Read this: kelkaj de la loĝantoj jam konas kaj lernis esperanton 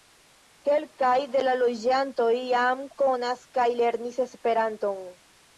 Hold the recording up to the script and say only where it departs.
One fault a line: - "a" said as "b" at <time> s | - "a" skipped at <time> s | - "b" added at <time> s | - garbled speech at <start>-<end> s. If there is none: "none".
none